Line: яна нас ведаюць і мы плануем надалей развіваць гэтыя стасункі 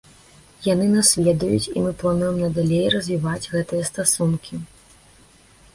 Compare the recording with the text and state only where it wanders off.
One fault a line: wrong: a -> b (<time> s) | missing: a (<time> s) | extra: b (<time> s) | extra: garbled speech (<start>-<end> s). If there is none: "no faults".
wrong: яна -> яны (0.7 s)